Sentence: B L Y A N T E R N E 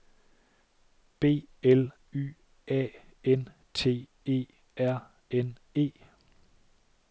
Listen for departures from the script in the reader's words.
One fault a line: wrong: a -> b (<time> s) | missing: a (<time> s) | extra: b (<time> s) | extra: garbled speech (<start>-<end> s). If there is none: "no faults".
no faults